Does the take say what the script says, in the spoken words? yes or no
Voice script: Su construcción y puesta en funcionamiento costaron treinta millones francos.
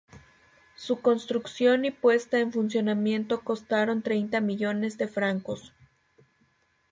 no